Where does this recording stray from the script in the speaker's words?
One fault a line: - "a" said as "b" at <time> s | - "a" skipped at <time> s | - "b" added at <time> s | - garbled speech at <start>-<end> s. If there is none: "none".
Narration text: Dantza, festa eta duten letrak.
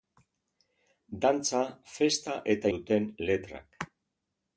none